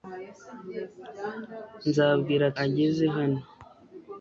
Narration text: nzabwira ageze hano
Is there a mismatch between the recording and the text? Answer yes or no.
no